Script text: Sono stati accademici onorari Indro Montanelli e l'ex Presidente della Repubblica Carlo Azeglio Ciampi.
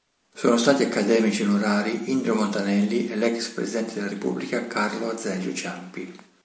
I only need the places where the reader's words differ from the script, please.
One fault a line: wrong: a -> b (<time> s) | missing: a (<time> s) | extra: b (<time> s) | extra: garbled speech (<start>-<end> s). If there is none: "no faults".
no faults